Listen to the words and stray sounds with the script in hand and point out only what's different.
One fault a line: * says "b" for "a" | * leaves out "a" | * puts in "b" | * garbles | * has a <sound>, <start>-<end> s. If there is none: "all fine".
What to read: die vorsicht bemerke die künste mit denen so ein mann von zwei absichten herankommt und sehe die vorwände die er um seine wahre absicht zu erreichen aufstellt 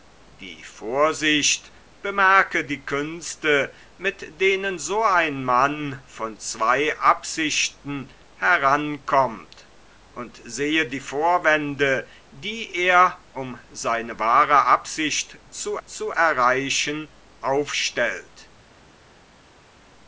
* puts in "zu"